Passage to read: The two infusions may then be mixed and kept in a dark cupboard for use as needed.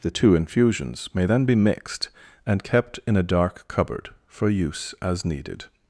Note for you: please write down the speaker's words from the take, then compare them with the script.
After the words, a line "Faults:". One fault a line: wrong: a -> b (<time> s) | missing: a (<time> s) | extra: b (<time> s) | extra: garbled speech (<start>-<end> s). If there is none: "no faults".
The two infusions may then be mixed and kept in a dark cupboard for use as needed.
Faults:
no faults